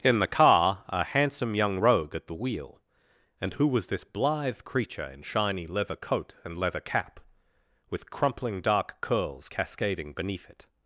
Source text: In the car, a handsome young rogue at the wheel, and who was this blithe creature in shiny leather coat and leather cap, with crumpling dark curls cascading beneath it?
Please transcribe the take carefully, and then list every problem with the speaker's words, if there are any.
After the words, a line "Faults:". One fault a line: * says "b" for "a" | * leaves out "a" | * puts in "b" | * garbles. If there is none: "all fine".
In the car, a handsome young rogue at the wheel, and who was this blithe creature in shiny leather coat and leather cap, with crumpling dark curls cascading beneath it?
Faults:
all fine